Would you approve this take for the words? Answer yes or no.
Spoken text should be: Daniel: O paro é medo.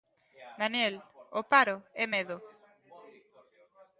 yes